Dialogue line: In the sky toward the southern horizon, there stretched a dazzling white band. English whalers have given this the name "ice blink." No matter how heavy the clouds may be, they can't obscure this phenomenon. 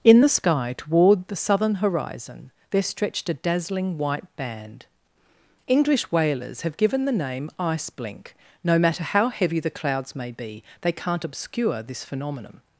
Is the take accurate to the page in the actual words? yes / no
no